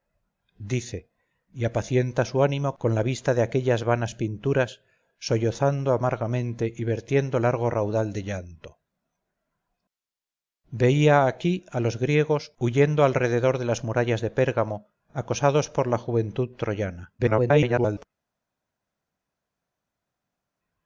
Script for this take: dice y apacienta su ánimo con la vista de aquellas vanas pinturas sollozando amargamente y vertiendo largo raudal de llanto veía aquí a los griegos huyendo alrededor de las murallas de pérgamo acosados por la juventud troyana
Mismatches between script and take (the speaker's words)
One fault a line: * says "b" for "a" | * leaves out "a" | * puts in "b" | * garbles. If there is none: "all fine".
* garbles